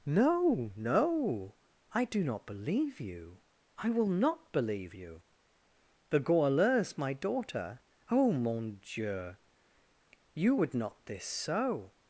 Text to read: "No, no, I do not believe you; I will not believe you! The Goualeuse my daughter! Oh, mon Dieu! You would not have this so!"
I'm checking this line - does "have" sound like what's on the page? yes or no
no